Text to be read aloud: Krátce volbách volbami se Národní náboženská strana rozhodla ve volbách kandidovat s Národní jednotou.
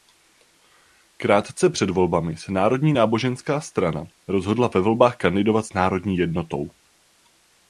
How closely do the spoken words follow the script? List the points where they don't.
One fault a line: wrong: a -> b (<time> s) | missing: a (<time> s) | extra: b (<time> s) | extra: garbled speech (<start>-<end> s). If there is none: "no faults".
wrong: volbách -> před (1.7 s)